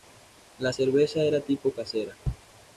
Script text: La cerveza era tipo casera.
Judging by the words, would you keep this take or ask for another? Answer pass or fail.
pass